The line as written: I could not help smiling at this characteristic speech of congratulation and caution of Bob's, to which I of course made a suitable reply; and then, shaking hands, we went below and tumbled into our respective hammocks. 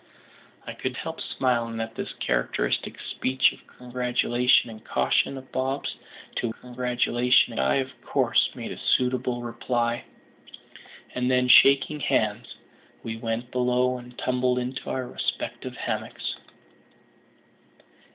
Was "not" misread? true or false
true